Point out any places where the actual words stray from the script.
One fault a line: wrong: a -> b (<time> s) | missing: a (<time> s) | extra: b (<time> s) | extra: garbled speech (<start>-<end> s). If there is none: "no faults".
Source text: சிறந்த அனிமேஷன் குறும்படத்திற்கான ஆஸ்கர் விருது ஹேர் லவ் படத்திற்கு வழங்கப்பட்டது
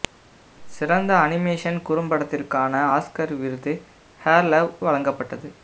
missing: படத்திற்கு (4.7 s)